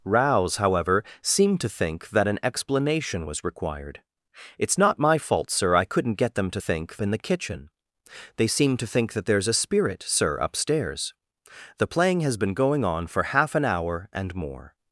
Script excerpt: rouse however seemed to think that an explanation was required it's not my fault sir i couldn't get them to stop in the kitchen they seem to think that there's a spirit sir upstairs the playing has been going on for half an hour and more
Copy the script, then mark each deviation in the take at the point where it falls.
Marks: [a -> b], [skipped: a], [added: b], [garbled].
rouse however seemed to think that an explanation was required it's not my fault sir i couldn't get them to [stop -> think] in the kitchen they seem to think that there's a spirit sir upstairs the playing has been going on for half an hour and more